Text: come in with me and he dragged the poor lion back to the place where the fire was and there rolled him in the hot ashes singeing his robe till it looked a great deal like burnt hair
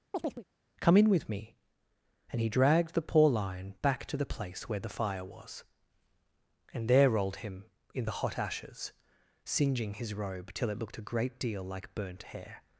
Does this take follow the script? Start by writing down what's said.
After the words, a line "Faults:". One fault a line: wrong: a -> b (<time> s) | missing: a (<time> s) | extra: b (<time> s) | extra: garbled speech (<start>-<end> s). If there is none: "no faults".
come in with me and he dragged the poor lion back to the place where the fire was and there rolled him in the hot ashes singeing his robe till it looked a great deal like burnt hair
Faults:
no faults